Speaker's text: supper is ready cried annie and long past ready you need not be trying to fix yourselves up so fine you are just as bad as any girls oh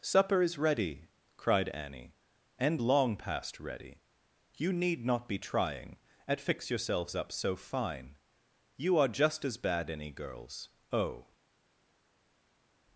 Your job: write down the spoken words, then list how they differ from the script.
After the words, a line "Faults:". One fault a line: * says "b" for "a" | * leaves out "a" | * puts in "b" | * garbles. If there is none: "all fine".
supper is ready cried annie and long past ready you need not be trying at fix yourselves up so fine you are just as bad any girls oh
Faults:
* says "at" for "to"
* leaves out "as"